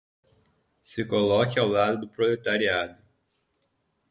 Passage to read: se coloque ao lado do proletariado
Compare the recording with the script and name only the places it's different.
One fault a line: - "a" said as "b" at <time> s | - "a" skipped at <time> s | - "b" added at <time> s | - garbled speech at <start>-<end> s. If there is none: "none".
none